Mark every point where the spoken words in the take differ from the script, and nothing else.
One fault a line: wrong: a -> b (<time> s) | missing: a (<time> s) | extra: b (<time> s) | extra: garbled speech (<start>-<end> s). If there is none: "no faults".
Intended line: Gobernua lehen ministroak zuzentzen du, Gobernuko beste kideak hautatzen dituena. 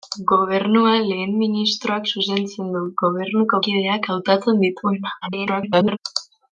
missing: beste (3.6 s)
extra: garbled speech (5.2-6.0 s)